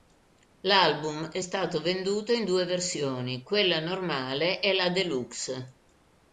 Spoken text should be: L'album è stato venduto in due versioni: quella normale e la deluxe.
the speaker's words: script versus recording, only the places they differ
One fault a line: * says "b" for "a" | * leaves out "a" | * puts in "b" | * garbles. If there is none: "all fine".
all fine